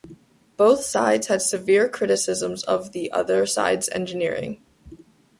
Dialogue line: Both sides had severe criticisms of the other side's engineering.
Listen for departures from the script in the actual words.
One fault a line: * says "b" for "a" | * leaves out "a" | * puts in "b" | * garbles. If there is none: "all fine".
all fine